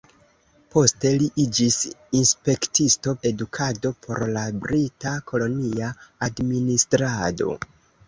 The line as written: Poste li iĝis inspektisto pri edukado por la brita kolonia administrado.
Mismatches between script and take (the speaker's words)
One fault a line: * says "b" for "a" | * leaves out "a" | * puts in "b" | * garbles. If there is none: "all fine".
* leaves out "pri"